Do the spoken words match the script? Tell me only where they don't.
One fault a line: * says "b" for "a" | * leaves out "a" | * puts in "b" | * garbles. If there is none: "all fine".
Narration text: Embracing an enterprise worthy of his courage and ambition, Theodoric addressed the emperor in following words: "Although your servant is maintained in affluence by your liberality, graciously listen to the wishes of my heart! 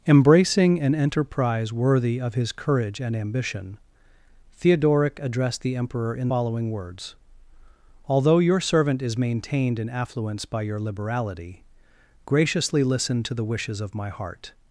all fine